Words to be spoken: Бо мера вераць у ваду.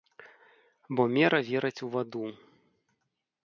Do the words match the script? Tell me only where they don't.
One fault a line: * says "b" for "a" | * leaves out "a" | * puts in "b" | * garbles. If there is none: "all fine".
all fine